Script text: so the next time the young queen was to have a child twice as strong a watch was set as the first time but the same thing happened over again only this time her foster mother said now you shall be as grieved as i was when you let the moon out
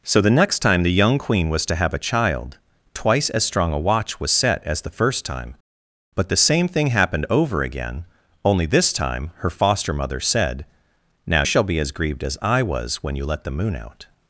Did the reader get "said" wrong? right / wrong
right